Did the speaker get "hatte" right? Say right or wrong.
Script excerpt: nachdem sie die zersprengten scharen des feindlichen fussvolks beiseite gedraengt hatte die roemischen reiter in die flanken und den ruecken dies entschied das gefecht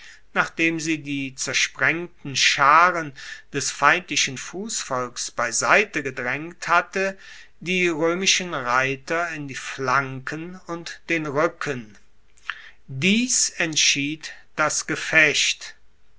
right